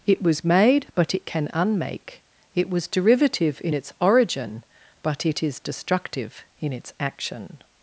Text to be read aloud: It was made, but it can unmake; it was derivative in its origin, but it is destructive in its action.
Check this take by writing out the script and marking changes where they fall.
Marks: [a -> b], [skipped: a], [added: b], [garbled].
It was made, but it can unmake; it was derivative in its origin, but it is destructive in its action.